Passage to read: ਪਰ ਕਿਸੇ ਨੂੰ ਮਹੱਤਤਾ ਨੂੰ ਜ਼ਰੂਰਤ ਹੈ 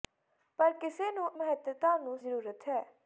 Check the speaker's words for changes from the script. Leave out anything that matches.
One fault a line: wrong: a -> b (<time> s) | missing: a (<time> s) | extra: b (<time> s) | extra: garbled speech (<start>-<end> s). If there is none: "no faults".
no faults